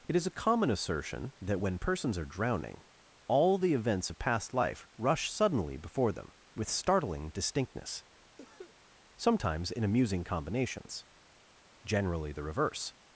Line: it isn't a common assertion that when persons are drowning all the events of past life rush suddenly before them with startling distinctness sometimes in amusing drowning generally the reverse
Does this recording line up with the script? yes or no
no